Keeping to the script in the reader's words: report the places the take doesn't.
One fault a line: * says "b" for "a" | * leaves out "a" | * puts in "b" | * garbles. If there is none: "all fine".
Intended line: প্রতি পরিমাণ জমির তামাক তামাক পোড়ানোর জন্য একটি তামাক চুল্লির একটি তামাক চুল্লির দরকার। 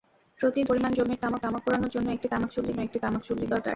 all fine